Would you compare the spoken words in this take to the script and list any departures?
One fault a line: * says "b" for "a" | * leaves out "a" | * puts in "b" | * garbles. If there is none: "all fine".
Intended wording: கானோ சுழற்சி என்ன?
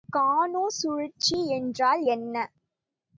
* puts in "என்றால்"